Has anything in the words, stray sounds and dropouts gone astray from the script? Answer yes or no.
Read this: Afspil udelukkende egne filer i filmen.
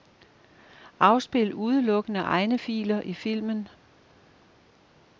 no